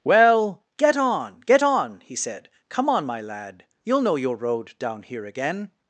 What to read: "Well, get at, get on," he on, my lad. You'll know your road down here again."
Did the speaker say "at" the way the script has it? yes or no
no